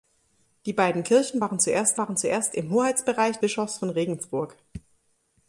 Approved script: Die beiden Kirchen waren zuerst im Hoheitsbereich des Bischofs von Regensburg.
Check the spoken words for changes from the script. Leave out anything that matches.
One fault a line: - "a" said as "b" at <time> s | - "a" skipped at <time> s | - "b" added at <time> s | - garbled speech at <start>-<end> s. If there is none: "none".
- "waren zuerst" added at 2.0 s
- "des" skipped at 3.4 s